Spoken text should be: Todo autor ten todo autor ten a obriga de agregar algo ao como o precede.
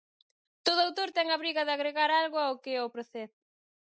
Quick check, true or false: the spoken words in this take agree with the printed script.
false